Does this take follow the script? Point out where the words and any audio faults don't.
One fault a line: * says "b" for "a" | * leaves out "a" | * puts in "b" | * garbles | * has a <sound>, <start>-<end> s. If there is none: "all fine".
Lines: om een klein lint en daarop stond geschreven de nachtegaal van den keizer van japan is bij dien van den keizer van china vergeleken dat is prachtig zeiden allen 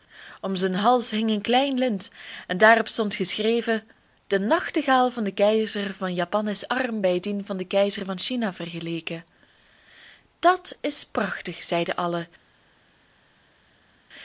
* puts in "zijn hals hing"
* puts in "arm"